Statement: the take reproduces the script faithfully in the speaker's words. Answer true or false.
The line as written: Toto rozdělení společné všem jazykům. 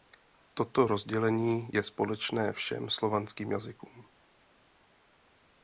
false